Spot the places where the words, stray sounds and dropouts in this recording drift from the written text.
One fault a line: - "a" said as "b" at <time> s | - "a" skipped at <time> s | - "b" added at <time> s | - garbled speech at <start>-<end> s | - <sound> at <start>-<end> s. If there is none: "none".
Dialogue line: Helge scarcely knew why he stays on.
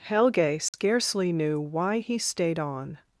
- dropout at 0.7-0.7 s
- "stays" said as "stayed" at 2.2 s